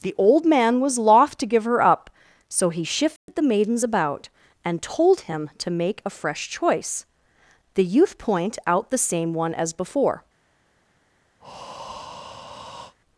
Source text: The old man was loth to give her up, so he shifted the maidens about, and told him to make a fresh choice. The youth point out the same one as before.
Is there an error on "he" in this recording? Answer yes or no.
no